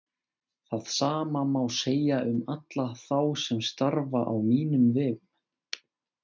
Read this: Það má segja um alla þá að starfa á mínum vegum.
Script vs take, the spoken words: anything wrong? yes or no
yes